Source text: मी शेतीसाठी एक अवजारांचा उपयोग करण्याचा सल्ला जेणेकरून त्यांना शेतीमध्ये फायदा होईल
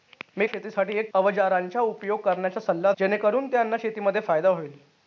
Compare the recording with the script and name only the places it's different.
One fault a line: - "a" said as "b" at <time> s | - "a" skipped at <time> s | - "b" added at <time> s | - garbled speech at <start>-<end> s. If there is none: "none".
none